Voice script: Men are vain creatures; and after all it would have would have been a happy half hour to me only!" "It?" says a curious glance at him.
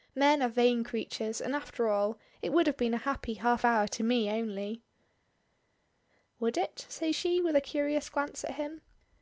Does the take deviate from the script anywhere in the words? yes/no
yes